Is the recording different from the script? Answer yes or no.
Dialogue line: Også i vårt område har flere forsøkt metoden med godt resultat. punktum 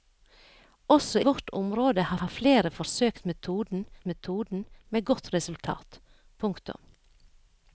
yes